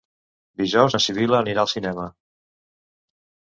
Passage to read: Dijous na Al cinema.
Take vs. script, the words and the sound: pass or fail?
fail